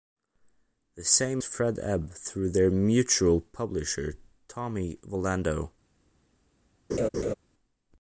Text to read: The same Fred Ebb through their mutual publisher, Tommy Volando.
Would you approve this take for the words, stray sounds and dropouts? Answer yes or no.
no